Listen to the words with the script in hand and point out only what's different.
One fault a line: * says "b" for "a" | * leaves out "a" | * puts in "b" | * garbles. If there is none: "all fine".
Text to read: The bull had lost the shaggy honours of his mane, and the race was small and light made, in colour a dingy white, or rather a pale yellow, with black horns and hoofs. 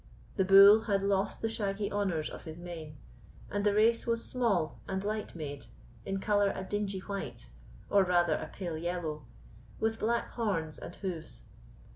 all fine